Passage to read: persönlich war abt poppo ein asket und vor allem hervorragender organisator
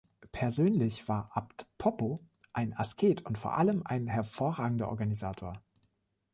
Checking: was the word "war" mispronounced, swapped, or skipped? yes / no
no